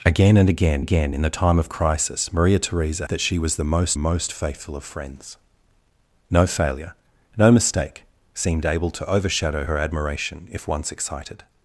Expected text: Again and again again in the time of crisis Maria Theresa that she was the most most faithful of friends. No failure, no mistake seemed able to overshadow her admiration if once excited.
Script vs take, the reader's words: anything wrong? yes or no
no